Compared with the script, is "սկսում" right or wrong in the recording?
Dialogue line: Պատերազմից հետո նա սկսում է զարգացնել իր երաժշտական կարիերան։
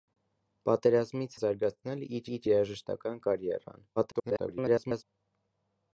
wrong